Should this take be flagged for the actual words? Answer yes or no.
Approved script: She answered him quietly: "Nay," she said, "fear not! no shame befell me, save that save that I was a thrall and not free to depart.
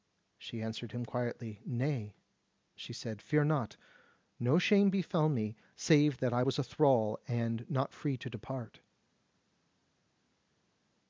yes